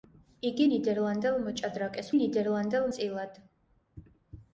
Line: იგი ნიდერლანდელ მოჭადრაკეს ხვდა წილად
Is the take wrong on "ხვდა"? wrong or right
wrong